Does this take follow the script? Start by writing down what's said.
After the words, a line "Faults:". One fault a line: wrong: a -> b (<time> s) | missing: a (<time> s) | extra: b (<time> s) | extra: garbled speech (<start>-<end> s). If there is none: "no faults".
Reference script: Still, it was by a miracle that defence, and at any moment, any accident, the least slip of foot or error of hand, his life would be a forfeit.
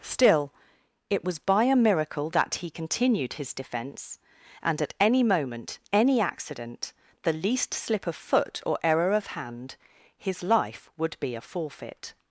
Still, it was by a miracle that he continued his defence, and at any moment, any accident, the least slip of foot or error of hand, his life would be a forfeit.
Faults:
extra: he continued his (2.5 s)